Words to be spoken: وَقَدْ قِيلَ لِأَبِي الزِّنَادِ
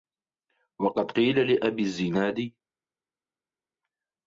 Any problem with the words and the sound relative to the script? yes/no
no